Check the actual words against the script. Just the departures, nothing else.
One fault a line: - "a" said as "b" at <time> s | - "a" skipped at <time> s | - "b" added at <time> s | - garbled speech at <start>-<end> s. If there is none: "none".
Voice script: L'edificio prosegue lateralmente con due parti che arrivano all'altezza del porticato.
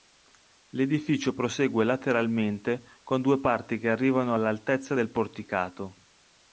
none